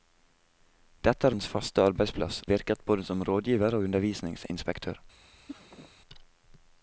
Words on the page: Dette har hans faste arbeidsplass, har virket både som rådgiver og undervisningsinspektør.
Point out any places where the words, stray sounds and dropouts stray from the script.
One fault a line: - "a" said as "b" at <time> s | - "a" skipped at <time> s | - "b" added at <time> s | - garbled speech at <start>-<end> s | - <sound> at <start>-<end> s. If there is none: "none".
- sneeze at 5.5-5.9 s